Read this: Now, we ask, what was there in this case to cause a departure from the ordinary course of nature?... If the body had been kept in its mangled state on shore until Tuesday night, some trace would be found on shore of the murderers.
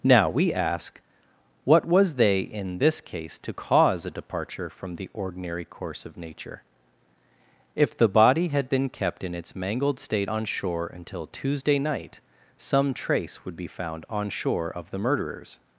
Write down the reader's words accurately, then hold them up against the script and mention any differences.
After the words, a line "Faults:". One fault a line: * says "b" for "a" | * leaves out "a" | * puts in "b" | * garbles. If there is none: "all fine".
Now, we ask, what was they in this case to cause a departure from the ordinary course of nature?... If the body had been kept in its mangled state on shore until Tuesday night, some trace would be found on shore of the murderers.
Faults:
* says "they" for "there"